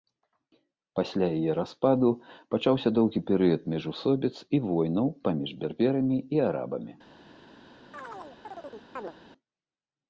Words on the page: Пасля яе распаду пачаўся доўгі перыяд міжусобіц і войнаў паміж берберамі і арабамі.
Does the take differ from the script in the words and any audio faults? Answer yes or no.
yes